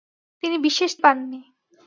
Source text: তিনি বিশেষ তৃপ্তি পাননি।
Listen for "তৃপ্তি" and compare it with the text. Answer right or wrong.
wrong